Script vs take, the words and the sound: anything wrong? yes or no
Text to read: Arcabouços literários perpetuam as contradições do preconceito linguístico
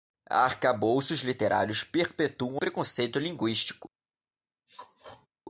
yes